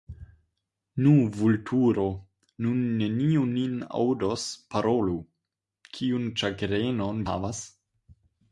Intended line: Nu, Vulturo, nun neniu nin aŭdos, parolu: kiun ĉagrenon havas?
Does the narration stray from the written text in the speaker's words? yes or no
no